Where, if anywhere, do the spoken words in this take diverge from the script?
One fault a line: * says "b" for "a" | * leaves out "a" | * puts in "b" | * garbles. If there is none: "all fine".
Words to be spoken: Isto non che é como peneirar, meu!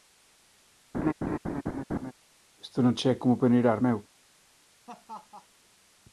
all fine